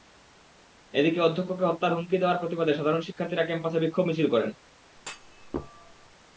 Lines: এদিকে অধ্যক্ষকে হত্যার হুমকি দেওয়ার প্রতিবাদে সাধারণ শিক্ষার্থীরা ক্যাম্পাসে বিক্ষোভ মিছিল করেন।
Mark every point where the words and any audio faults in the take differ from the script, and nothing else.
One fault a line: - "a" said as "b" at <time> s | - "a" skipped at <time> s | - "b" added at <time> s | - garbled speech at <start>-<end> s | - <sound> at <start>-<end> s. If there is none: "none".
- thud at 5.0-6.2 s